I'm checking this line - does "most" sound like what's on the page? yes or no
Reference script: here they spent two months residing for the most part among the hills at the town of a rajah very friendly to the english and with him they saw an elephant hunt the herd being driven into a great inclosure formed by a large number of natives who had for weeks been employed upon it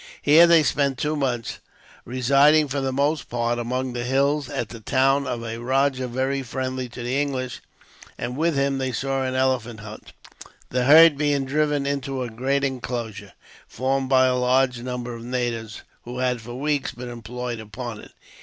yes